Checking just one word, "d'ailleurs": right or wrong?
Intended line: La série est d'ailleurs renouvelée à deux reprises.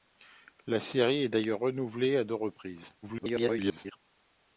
right